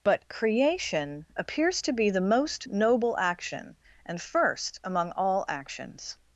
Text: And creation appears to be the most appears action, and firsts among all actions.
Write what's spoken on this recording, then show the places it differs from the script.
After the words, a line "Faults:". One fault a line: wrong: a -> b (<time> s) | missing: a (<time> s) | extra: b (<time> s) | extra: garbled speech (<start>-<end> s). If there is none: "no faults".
But creation appears to be the most noble action, and first among all actions.
Faults:
wrong: And -> But (0.0 s)
wrong: appears -> noble (2.7 s)
wrong: firsts -> first (4.2 s)